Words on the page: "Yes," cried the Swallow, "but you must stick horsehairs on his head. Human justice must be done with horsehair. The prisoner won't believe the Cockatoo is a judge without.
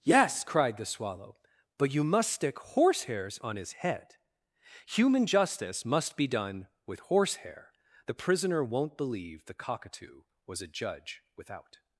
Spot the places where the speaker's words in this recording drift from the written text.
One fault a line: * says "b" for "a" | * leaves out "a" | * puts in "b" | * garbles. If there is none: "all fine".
* says "was" for "is"